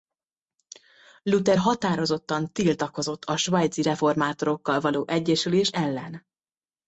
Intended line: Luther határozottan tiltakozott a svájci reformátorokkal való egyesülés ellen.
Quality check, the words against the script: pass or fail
pass